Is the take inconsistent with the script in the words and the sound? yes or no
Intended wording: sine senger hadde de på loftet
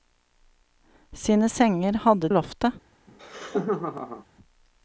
yes